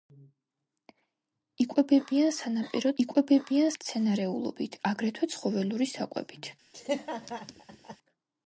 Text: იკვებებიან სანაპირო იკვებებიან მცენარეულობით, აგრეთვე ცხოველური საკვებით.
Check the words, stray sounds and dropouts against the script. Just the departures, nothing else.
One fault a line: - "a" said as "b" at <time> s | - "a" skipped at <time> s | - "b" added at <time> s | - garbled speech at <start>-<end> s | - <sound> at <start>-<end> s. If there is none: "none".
- laugh at 6.7-8.0 s